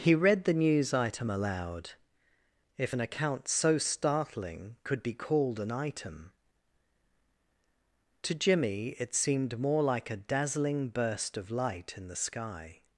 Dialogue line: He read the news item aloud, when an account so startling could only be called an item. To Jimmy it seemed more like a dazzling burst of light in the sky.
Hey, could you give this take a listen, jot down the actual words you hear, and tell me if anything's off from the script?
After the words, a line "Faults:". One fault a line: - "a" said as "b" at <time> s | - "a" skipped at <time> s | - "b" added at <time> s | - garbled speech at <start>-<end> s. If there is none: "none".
He read the news item aloud, if an account so startling could be called an item. To Jimmy it seemed more like a dazzling burst of light in the sky.
Faults:
- "when" said as "if" at 2.8 s
- "only" skipped at 5.0 s